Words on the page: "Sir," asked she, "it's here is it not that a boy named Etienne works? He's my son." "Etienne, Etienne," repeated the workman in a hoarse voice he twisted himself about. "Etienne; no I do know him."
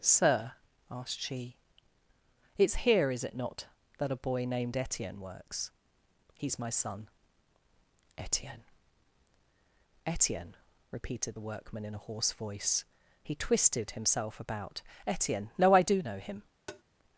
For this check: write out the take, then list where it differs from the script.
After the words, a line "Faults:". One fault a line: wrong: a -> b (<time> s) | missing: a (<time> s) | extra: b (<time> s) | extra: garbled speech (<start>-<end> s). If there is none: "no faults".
"Sir," asked she, "it's here is it not that a boy named Etienne works? He's my son." "Etienne, Etienne," repeated the workman in a hoarse voice he twisted himself about. "Etienne; no I do know him."
Faults:
no faults